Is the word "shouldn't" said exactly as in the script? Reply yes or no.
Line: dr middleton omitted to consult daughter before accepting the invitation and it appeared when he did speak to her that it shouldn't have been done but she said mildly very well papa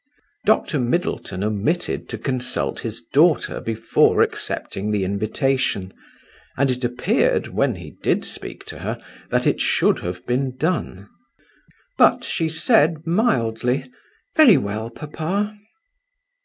no